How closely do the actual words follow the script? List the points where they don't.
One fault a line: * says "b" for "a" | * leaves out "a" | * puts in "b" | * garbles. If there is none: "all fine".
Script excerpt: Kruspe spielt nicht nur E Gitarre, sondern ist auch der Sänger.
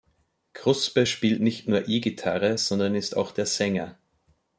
all fine